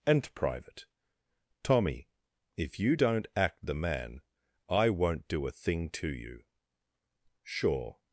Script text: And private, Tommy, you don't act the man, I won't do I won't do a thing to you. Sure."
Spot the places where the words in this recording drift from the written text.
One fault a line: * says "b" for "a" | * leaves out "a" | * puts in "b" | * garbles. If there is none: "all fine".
* puts in "if"
* leaves out "I won't do"